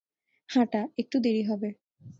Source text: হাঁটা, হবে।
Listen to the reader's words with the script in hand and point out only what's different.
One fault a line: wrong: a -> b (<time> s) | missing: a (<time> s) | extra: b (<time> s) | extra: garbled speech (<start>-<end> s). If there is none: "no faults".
extra: একটু দেরি (1.0 s)